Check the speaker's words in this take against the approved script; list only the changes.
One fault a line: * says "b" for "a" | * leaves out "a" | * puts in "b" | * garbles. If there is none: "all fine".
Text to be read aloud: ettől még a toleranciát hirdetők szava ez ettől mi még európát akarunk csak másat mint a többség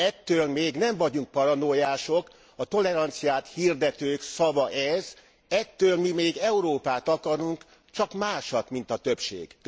* puts in "nem vagyunk paranoiások"